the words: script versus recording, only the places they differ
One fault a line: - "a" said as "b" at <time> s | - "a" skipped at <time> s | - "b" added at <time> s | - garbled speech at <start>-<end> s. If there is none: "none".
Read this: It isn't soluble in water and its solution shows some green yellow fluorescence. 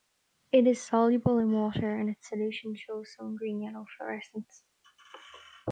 - "isn't" said as "is" at 0.7 s